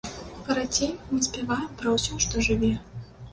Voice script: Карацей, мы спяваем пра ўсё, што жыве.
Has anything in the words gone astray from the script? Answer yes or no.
no